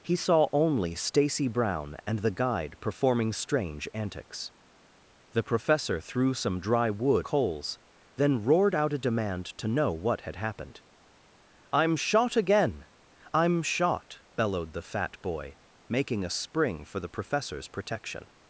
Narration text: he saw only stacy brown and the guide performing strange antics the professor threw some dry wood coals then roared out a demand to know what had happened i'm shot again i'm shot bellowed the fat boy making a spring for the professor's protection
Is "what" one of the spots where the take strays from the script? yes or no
no